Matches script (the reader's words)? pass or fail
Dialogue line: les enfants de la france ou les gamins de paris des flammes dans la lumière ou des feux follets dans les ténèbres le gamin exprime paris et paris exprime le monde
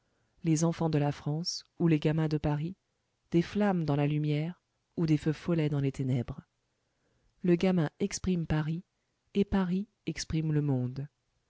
pass